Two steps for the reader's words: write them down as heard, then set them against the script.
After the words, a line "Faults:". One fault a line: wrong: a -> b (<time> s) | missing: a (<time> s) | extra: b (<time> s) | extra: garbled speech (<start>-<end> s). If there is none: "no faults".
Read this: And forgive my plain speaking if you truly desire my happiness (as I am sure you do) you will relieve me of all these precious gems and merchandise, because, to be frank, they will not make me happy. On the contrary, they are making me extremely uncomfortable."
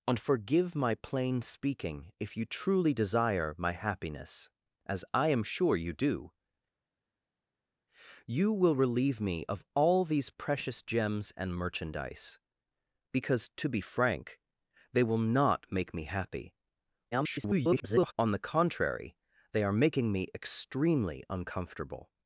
And forgive my plain speaking if you truly desire my happiness (as I am sure you do) you will relieve me of all these precious gems and merchandise, because, to be frank, they will not make me happy. [garbled] On the contrary, they are making me extremely uncomfortable."
Faults:
extra: garbled speech (17.1-18.1 s)